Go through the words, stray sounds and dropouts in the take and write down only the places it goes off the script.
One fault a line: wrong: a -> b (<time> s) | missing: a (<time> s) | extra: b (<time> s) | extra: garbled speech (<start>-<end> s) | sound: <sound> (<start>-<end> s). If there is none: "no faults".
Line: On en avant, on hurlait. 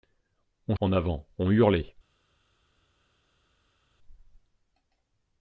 no faults